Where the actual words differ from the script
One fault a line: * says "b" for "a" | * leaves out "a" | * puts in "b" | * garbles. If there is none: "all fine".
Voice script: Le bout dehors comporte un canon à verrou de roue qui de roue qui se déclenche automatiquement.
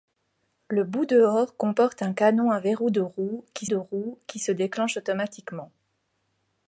all fine